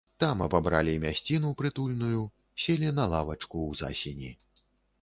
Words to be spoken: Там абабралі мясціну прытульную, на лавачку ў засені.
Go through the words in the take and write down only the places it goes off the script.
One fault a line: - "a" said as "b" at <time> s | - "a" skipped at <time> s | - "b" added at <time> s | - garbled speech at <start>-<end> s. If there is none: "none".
- "селі" added at 2.7 s